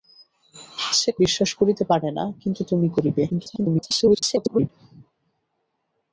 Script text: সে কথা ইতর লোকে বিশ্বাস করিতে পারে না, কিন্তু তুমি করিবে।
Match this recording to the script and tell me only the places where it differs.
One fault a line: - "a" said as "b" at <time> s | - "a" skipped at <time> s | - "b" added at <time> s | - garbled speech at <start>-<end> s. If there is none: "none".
- "কথা ইতর লোকে" skipped at 1.1 s
- garbled speech at 3.3-4.7 s